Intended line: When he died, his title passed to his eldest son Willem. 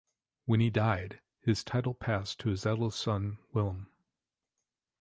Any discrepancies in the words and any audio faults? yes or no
no